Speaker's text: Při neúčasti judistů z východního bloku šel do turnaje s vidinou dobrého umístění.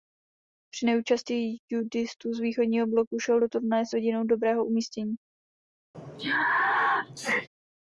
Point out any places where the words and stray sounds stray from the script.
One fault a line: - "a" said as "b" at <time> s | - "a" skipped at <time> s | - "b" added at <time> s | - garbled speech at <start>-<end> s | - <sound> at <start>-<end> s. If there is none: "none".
- sneeze at 5.9-7.5 s